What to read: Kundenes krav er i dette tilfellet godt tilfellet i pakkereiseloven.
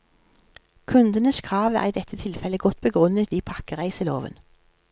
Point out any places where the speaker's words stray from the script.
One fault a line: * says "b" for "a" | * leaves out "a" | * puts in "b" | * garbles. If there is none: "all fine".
* says "begrunnet" for "tilfellet"